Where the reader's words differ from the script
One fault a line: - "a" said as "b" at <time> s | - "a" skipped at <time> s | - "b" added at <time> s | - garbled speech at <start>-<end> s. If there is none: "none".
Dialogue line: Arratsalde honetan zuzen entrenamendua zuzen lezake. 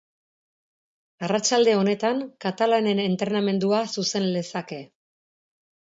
- "zuzen" said as "katalanen" at 2.5 s